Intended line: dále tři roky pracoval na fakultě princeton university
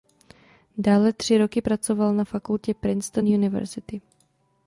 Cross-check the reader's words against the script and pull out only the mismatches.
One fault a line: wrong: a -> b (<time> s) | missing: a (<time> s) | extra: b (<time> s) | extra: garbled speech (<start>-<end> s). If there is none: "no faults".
no faults